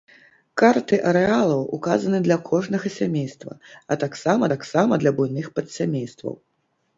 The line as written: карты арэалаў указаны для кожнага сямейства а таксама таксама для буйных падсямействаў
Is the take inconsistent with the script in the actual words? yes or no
no